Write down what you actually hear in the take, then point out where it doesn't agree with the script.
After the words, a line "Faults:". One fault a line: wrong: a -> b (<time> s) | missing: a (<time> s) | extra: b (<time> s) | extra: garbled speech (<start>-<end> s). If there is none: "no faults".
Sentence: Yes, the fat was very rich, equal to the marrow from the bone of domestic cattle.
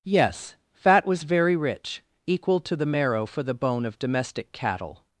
Yes, fat was very rich, equal to the marrow for the bone of domestic cattle.
Faults:
missing: the (0.6 s)
wrong: from -> for (3.3 s)